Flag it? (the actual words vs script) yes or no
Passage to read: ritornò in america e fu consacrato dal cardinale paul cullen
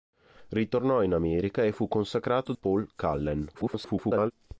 yes